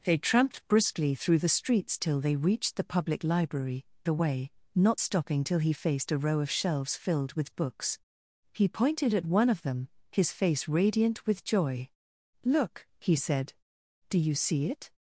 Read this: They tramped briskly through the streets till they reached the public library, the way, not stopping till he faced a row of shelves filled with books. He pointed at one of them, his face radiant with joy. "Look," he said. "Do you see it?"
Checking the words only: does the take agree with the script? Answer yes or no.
yes